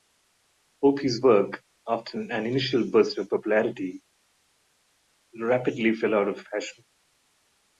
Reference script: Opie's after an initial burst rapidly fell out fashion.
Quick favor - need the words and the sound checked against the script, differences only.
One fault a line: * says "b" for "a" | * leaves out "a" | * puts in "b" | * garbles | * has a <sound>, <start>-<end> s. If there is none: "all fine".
* puts in "work"
* puts in "of popularity"
* puts in "of"